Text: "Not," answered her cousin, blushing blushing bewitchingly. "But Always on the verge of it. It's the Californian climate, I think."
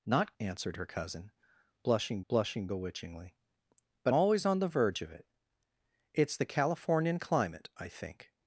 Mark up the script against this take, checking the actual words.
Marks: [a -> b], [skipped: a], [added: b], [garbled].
"Not," answered her cousin, blushing blushing bewitchingly. "But Always on the verge of it. It's the Californian climate, I think."